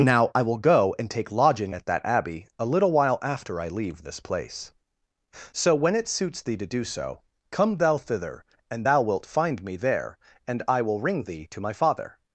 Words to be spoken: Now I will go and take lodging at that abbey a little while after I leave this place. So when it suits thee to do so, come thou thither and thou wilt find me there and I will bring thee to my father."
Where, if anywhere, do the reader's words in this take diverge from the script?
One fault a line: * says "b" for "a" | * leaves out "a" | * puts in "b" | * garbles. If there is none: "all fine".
* says "ring" for "bring"